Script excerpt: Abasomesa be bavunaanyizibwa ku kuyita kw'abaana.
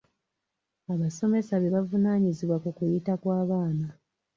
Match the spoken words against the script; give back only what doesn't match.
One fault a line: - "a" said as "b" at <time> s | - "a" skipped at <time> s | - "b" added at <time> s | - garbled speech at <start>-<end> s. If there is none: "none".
none